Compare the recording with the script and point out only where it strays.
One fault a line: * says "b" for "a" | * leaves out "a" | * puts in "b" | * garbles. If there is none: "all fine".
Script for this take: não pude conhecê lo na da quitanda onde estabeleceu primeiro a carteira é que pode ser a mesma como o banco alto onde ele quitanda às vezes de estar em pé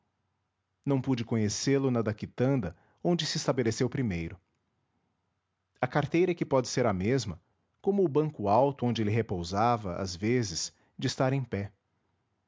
* puts in "se"
* says "repousava" for "quitanda"